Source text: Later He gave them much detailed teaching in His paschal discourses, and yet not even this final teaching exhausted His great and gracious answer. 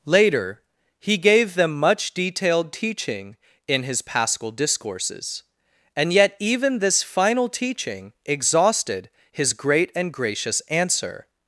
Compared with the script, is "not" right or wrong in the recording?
wrong